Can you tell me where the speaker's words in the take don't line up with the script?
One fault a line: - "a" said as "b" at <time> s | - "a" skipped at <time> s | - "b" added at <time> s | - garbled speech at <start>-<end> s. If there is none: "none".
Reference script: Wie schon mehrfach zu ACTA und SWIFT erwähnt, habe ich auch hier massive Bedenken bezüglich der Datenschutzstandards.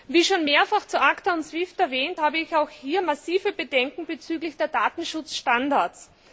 none